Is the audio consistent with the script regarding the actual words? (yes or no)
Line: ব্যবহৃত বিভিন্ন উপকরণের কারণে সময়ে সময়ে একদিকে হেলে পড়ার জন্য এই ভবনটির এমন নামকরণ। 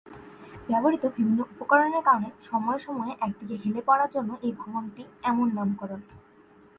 yes